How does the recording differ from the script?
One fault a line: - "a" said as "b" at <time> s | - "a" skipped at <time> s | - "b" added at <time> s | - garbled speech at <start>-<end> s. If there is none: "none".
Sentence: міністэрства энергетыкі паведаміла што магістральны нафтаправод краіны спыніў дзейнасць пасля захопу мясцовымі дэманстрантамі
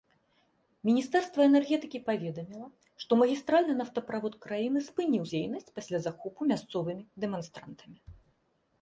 none